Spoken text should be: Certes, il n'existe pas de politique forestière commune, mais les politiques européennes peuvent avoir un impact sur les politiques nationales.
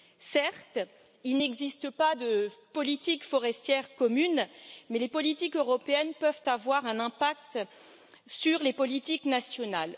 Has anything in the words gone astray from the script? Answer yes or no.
no